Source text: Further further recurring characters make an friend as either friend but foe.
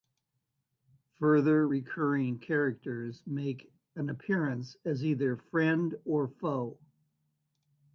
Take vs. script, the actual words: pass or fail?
fail